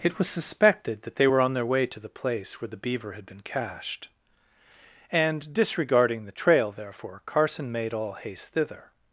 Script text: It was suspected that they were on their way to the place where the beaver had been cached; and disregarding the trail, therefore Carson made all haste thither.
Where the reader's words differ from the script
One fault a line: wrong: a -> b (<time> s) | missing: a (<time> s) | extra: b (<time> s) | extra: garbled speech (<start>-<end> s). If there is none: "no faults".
no faults